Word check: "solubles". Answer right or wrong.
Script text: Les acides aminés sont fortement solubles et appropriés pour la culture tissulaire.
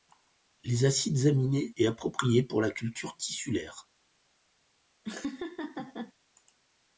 wrong